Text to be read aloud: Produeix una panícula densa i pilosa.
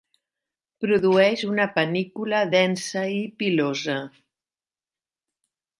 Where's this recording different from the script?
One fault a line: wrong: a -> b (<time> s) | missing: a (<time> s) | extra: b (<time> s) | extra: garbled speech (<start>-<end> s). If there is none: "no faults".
no faults